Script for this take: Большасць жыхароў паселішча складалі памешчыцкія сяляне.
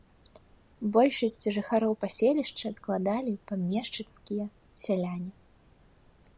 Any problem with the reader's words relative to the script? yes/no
no